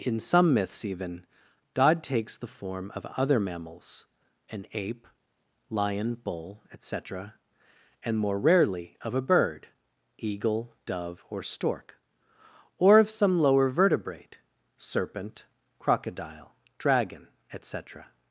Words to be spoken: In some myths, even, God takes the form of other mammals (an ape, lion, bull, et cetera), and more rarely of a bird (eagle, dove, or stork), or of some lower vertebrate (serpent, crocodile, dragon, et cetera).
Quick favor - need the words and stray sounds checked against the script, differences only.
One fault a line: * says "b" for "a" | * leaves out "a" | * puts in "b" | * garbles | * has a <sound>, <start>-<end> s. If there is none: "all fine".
all fine